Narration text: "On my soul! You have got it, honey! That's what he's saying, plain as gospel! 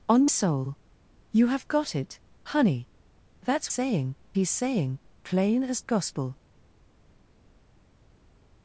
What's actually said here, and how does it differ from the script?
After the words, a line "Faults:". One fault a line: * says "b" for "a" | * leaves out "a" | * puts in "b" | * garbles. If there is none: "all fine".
"On soul! You have got it, honey! That's saying he's saying, plain as gospel!
Faults:
* leaves out "my"
* says "saying" for "what"